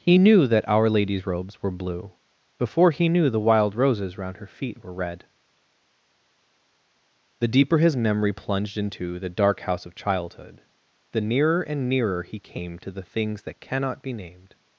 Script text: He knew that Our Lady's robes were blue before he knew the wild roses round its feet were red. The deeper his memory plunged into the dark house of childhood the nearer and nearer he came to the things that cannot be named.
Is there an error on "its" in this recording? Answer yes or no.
yes